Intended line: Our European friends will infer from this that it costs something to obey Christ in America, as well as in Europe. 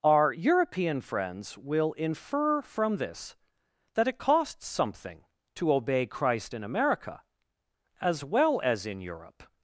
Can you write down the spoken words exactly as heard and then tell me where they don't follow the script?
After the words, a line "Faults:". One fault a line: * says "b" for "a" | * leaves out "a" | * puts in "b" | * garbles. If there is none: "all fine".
Our European friends will infer from this that it costs something to obey Christ in America, as well as in Europe.
Faults:
all fine